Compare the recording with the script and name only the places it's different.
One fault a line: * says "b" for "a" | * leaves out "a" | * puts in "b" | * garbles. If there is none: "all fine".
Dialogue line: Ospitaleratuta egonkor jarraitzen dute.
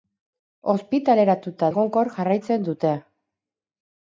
all fine